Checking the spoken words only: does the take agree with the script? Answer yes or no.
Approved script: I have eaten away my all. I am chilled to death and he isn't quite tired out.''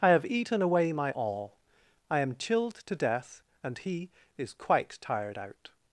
no